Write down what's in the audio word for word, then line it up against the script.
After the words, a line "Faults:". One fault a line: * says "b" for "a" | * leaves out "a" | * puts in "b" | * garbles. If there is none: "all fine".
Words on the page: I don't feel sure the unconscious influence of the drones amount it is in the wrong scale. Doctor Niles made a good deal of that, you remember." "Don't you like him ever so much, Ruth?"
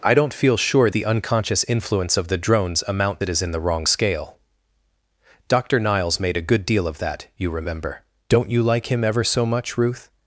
I don't feel sure the unconscious influence of the drones amount it is in the wrong scale. Doctor Niles made a good deal of that, you remember." "Don't you like him ever so much, Ruth?"
Faults:
all fine